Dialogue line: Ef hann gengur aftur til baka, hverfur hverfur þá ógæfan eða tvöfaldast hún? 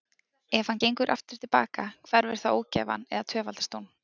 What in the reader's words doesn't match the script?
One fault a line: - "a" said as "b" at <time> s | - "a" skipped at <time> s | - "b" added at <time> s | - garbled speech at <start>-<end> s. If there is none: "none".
- "hverfur" skipped at 2.4 s